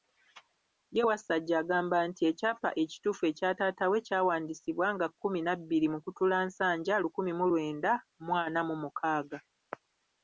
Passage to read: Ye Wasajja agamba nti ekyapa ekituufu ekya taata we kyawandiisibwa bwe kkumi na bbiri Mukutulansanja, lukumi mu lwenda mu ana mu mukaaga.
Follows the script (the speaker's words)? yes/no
no